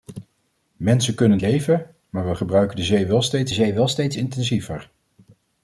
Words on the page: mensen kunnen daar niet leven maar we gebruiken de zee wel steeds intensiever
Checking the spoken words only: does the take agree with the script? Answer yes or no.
no